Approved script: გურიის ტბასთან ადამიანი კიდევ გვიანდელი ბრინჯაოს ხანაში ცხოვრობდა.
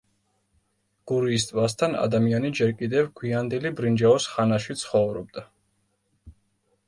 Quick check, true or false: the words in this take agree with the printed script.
false